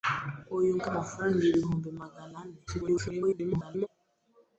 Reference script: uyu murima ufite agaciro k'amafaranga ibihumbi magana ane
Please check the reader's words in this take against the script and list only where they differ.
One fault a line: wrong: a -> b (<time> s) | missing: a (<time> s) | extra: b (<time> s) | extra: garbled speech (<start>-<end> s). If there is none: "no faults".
missing: murima ufite agaciro (0.7 s)
extra: garbled speech (2.7-3.9 s)